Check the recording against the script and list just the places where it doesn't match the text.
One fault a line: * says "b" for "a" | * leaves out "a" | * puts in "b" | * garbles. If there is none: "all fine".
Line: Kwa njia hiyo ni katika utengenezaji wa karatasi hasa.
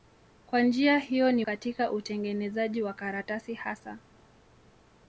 all fine